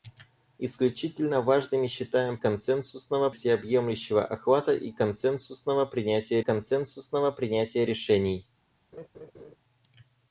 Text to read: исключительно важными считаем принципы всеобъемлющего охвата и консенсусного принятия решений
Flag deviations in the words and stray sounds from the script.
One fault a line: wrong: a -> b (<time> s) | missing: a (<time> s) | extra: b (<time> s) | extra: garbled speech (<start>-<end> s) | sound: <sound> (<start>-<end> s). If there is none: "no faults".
wrong: принципы -> консенсусного (2.4 s)
extra: консенсусного принятия (6.4 s)
sound: laugh (8.9-9.6 s)